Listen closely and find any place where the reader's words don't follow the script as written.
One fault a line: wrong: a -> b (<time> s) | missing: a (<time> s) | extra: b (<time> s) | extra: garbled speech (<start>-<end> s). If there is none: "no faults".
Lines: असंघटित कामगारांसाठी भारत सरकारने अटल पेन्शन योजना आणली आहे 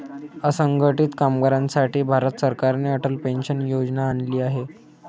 no faults